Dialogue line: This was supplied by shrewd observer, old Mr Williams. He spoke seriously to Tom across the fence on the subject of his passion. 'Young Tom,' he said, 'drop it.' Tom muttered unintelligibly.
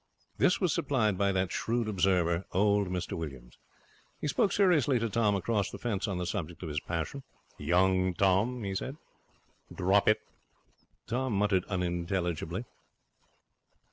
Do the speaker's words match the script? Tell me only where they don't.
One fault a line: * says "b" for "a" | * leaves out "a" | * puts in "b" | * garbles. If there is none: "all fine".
* puts in "that"